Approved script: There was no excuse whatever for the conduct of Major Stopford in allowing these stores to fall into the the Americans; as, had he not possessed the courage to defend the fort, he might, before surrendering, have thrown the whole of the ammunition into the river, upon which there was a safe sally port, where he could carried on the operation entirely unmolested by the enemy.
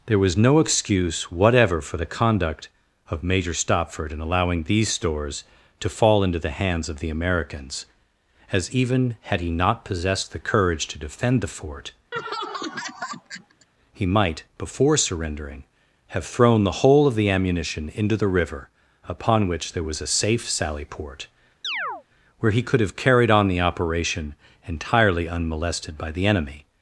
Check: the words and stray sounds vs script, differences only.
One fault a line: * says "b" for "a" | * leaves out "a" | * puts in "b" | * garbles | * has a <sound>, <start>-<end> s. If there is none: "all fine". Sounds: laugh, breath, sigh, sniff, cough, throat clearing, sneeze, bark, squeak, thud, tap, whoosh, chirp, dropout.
* puts in "hands of"
* puts in "even"
* has a laugh, 12.1-13.7 s
* has a chirp, 21.6-22.0 s
* puts in "have"